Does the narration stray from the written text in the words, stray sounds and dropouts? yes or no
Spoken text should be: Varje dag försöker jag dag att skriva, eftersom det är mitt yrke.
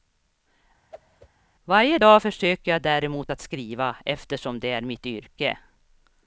yes